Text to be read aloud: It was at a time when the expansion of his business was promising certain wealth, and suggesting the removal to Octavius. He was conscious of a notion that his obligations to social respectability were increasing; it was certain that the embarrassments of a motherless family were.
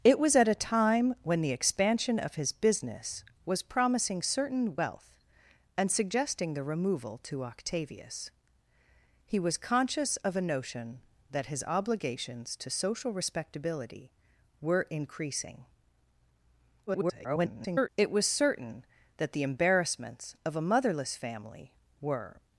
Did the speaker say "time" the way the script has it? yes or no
yes